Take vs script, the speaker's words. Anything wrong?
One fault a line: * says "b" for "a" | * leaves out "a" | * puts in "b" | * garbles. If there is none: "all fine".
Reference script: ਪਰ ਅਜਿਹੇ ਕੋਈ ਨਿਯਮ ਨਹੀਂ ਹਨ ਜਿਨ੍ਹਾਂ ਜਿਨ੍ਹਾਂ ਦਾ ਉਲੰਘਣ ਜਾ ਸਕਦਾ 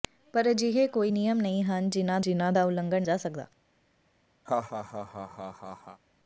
all fine